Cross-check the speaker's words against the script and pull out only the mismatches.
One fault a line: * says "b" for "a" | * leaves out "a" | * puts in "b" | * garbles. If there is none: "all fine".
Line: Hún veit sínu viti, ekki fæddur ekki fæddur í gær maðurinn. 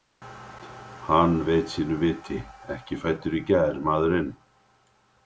* says "Hann" for "Hún"
* leaves out "ekki fæddur"